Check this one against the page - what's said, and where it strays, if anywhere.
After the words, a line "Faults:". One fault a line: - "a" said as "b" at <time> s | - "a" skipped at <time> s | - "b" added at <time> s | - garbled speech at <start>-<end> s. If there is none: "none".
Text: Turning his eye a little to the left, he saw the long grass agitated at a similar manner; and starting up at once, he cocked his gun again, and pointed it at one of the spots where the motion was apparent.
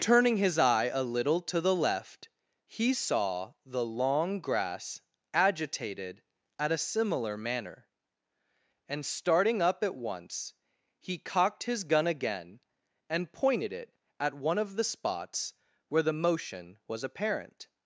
Turning his eye a little to the left, he saw the long grass agitated at a similar manner; and starting up at once, he cocked his gun again, and pointed it at one of the spots where the motion was apparent.
Faults:
none